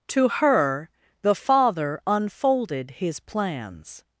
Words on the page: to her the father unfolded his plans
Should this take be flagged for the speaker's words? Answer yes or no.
no